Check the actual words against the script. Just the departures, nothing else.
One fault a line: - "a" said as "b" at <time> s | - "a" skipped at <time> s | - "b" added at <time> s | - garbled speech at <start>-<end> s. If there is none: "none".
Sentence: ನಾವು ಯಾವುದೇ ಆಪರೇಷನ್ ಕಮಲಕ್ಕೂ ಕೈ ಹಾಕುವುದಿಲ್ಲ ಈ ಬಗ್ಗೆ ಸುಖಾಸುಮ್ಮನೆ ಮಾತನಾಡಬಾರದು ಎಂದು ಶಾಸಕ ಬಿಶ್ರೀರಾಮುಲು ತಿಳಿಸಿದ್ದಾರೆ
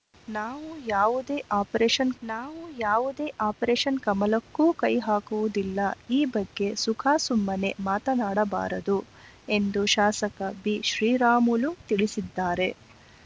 - "ನಾವು ಯಾವುದೇ ಆಪರೇಷನ್" added at 2.2 s